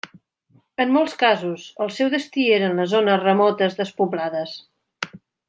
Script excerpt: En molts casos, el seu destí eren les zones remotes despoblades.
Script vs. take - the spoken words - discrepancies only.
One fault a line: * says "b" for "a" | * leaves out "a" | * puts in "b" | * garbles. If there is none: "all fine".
all fine